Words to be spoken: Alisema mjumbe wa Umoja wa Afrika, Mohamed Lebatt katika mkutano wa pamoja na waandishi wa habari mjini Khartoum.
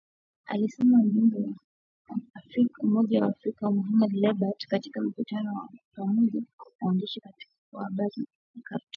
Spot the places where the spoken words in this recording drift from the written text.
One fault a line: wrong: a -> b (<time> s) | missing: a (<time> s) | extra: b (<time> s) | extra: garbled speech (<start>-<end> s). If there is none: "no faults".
no faults